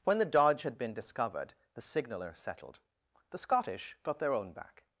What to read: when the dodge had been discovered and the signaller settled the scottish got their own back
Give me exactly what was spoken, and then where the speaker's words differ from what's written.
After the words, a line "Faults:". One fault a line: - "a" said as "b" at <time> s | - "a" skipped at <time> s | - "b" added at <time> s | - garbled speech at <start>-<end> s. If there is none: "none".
when the dodge had been discovered the signaller settled the scottish got their own back
Faults:
- "and" skipped at 1.5 s